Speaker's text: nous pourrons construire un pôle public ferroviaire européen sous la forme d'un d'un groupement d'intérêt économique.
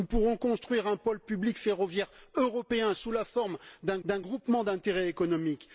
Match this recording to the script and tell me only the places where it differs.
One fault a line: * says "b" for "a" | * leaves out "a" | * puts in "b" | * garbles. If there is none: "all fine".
all fine